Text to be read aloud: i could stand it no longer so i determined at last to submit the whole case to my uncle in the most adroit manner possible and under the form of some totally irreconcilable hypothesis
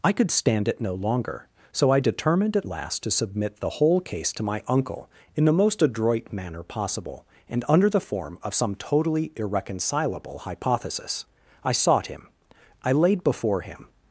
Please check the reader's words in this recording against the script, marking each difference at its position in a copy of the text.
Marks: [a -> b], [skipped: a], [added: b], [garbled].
i could stand it no longer so i determined at last to submit the whole case to my uncle in the most adroit manner possible and under the form of some totally irreconcilable hypothesis [added: i sought him i laid before him]